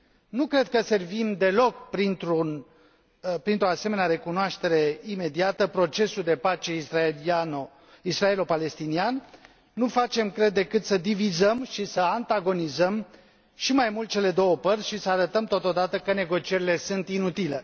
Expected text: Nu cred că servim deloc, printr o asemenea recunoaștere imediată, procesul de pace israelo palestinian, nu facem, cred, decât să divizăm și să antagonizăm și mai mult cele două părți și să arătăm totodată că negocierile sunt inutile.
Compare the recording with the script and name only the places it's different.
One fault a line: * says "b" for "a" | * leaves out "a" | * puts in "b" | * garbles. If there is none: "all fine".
all fine